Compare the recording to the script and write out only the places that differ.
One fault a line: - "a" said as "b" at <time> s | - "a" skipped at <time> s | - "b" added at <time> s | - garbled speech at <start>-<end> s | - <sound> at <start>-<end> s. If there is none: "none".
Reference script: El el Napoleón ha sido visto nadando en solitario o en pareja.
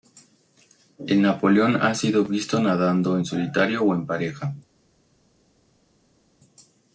- "el" skipped at 1.2 s